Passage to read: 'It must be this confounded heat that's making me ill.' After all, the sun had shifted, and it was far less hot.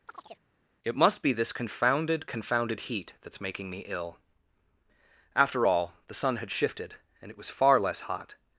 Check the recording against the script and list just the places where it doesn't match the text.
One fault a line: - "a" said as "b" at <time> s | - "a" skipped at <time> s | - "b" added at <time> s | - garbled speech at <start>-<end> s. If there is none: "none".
- "confounded" added at 2.3 s